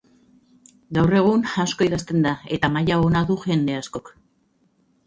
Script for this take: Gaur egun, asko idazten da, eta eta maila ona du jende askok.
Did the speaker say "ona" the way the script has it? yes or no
yes